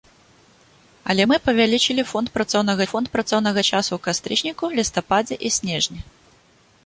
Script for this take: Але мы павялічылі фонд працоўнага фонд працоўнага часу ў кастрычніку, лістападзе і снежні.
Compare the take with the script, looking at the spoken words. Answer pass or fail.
pass